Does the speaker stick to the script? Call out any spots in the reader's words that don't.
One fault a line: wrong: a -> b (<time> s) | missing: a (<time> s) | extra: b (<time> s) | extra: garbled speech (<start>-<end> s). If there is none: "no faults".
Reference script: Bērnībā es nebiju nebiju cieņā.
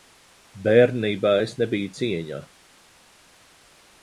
missing: nebiju (1.9 s)